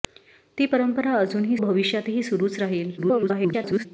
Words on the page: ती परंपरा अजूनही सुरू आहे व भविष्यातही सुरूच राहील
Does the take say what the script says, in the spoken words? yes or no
no